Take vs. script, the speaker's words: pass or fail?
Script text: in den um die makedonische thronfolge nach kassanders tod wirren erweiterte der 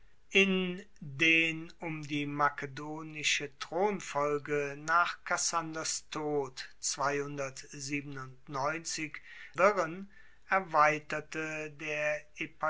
pass